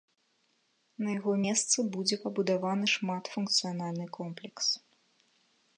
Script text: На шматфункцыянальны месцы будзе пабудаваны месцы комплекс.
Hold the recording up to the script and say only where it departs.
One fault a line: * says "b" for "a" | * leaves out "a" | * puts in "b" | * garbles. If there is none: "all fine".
* says "яго" for "шматфункцыянальны"
* says "шматфункцыянальны" for "месцы"